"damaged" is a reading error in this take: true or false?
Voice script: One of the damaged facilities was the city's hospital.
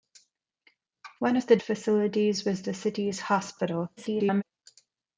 true